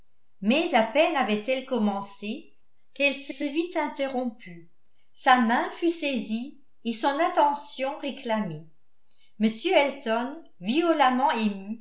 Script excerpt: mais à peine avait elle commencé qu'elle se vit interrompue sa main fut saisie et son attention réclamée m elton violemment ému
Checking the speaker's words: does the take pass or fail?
fail